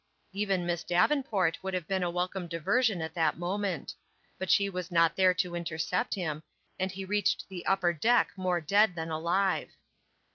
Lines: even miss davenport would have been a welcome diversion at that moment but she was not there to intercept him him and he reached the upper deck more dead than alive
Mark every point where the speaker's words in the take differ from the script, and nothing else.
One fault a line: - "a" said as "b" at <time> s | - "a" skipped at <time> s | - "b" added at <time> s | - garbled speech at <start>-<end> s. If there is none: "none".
- "him" skipped at 6.4 s